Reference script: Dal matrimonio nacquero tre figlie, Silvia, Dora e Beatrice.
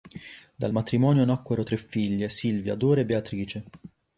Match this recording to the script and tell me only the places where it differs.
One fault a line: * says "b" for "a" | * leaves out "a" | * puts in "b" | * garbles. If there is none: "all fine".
all fine